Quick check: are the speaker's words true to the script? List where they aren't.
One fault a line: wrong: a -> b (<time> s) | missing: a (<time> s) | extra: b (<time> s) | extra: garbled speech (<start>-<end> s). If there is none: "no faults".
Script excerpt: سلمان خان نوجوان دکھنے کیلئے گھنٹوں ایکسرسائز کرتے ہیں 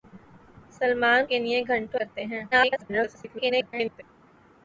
missing: خان نوجوان دکھنے (1.2 s)
missing: ایکسرسائز (2.0 s)
extra: garbled speech (2.5-4.0 s)